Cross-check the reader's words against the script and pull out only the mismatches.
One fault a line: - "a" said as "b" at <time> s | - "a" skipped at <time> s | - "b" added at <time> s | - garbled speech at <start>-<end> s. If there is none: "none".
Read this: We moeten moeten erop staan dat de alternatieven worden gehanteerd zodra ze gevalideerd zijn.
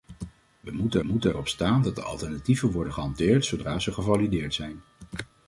none